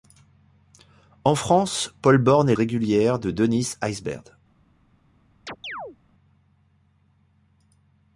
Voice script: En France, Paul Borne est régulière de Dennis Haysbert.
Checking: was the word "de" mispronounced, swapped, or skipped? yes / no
no